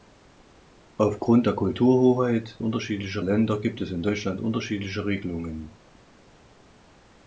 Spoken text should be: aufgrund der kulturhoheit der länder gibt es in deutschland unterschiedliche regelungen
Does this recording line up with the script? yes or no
no